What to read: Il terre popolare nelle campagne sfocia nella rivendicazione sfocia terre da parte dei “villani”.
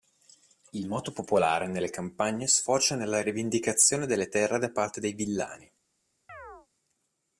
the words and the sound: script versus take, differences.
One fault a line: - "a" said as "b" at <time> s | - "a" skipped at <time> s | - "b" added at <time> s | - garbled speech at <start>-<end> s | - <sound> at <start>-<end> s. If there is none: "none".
- "terre" said as "moto" at 0.9 s
- "sfocia" said as "delle" at 4.1 s
- chirp at 6.3-6.7 s